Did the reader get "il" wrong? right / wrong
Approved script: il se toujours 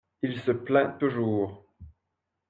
right